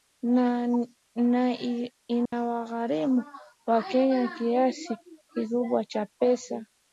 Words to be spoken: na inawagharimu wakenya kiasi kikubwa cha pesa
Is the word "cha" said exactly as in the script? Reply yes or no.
yes